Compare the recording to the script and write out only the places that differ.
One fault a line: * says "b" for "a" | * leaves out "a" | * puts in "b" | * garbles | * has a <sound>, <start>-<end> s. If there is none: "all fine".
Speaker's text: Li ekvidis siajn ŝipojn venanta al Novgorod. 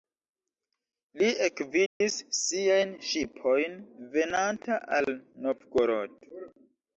* has a dropout, 1.9-2.0 s